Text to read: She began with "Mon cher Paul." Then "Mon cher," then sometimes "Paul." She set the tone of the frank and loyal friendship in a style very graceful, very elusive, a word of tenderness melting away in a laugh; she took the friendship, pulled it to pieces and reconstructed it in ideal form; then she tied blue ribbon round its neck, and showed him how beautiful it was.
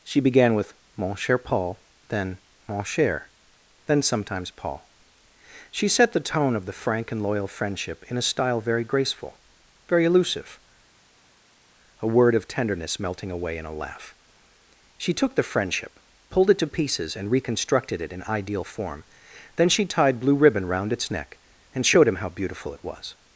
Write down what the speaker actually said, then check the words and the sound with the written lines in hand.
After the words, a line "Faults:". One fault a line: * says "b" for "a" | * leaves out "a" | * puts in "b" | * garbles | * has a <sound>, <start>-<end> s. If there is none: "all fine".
She began with "Mon cher Paul." Then "Mon cher," then sometimes "Paul." She set the tone of the frank and loyal friendship in a style very graceful, very elusive, a word of tenderness melting away in a laugh; she took the friendship, pulled it to pieces and reconstructed it in ideal form; then she tied blue ribbon round its neck, and showed him how beautiful it was.
Faults:
all fine